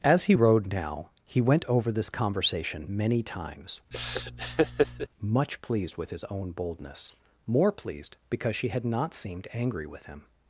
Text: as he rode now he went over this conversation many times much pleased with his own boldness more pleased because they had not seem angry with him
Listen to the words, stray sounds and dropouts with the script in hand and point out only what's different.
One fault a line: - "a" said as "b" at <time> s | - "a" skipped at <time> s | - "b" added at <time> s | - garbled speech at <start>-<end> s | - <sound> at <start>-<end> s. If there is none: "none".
- laugh at 3.9-5.1 s
- "they" said as "she" at 8.6 s
- "seem" said as "seemed" at 9.1 s